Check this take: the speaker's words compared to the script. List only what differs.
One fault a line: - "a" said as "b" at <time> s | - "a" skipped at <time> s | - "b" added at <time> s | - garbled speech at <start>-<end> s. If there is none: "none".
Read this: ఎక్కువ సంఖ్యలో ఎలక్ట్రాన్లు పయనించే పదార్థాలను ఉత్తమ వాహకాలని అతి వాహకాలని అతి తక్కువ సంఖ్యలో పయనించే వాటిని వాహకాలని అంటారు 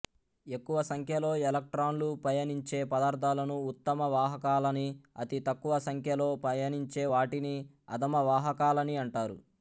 - "వాహకాలని అతి" skipped at 5.4 s
- "అధమ" added at 8.0 s